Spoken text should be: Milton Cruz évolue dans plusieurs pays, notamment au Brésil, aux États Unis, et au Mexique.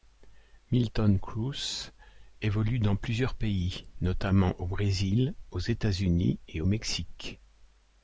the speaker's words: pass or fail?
pass